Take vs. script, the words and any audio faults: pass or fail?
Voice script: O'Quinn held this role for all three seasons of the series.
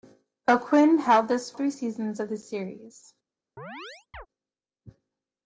fail